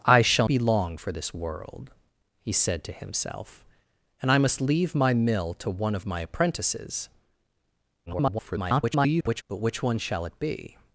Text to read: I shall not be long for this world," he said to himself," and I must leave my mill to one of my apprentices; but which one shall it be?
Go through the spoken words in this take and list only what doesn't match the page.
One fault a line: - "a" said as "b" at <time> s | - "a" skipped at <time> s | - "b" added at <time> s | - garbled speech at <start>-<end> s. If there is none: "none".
- "not" skipped at 0.5 s
- garbled speech at 8.1-9.4 s